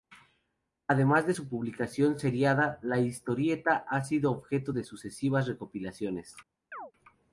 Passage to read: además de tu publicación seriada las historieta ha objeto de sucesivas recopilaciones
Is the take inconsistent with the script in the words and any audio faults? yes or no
yes